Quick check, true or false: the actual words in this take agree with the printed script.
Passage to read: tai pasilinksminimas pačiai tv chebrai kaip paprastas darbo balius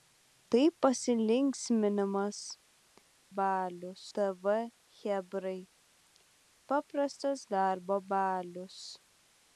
false